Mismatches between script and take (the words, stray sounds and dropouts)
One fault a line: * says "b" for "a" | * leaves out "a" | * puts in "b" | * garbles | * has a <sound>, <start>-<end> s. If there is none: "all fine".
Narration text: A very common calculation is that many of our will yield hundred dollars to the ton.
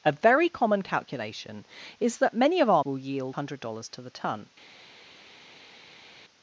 all fine